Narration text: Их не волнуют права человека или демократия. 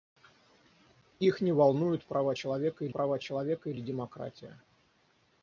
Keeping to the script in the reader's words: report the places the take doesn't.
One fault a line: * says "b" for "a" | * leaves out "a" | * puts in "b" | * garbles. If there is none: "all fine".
* puts in "права человека или"